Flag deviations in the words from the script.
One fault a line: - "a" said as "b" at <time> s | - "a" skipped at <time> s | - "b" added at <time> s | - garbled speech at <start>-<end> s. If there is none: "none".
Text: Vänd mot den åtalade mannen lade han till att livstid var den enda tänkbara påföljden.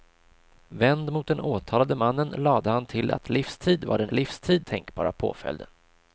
- "enda" said as "livstid" at 4.1 s